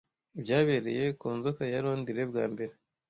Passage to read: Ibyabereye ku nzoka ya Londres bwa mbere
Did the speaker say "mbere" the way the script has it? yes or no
yes